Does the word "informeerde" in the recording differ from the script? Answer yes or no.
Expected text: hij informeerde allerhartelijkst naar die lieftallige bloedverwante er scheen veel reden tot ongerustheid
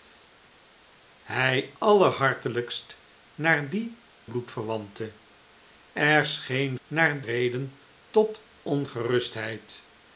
yes